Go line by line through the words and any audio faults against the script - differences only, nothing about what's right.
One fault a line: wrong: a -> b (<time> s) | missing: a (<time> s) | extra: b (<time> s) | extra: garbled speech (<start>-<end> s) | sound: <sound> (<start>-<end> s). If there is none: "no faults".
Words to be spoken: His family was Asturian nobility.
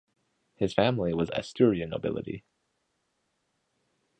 no faults